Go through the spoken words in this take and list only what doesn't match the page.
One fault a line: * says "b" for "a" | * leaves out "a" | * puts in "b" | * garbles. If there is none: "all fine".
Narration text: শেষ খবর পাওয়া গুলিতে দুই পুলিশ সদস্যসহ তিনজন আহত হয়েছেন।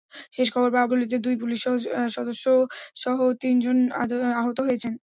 all fine